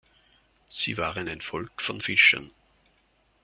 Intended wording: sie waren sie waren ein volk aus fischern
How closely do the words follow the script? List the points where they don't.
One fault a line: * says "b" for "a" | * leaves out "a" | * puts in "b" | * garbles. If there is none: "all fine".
* leaves out "sie waren"
* says "von" for "aus"